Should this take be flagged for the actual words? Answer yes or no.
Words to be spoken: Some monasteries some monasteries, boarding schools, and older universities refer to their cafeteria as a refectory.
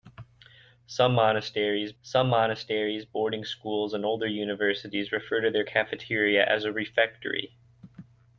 no